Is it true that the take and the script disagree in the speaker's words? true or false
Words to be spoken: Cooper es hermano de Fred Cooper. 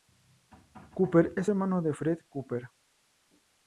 false